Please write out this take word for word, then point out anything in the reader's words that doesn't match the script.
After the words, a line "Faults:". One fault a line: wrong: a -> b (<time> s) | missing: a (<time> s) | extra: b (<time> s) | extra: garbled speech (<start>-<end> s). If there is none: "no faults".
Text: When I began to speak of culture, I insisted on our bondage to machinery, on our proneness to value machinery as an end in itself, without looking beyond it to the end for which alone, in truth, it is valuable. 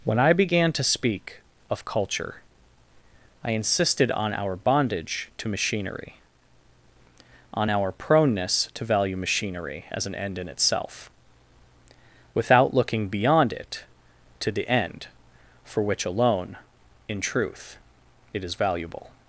When I began to speak of culture, I insisted on our bondage to machinery, on our proneness to value machinery as an end in itself, without looking beyond it to the end for which alone, in truth, it is valuable.
Faults:
no faults